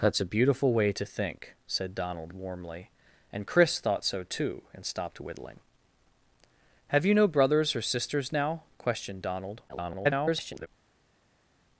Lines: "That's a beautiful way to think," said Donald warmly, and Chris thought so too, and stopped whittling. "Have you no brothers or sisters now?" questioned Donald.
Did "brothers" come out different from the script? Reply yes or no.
no